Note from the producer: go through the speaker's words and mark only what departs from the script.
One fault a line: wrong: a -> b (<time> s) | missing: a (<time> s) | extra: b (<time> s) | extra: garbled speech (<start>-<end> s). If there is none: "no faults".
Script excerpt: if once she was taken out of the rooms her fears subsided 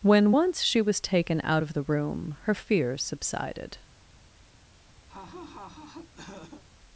wrong: if -> when (0.0 s)
wrong: rooms -> room (1.8 s)